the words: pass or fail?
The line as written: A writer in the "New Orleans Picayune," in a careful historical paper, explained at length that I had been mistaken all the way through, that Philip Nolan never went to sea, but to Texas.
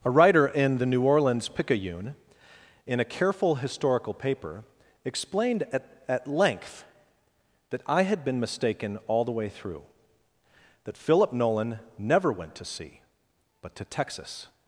fail